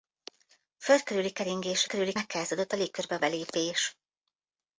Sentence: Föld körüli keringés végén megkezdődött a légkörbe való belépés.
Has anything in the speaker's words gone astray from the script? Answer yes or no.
yes